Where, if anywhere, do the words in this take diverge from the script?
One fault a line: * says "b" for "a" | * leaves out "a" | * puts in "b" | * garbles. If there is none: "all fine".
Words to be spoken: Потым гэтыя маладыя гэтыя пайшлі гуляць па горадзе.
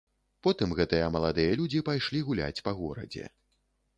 * says "людзі" for "гэтыя"